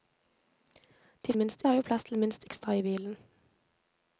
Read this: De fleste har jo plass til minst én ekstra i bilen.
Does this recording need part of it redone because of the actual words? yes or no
yes